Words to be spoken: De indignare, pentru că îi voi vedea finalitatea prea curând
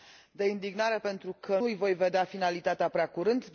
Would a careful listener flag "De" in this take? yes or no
no